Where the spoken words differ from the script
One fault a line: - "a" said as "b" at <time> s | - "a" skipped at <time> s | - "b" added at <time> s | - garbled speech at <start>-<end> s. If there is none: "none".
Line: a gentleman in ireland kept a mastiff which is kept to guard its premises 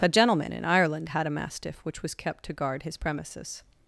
- "kept" said as "had" at 1.1 s
- "is" said as "was" at 2.0 s
- "its" said as "his" at 2.8 s